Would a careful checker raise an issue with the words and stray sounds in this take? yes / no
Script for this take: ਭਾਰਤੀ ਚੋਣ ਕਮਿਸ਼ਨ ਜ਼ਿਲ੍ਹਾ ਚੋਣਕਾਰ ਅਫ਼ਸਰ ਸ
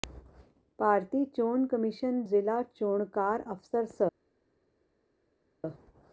no